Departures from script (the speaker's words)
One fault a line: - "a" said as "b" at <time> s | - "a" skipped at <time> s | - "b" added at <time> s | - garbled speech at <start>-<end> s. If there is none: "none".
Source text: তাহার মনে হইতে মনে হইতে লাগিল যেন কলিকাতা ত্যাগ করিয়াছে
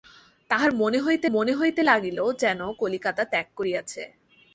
none